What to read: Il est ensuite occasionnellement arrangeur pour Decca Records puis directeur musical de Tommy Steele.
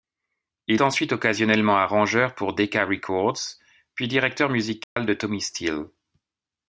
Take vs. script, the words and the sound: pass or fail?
fail